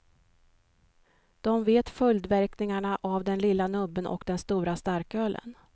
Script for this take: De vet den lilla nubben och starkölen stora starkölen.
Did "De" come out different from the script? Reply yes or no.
no